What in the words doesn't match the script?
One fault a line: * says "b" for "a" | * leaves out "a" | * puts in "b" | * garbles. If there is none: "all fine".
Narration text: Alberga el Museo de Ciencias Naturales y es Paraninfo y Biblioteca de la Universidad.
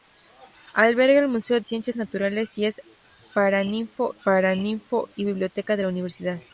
* leaves out "de"
* puts in "Paraninfo"